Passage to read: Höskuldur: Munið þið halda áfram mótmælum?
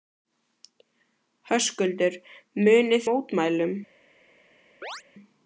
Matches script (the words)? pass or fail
fail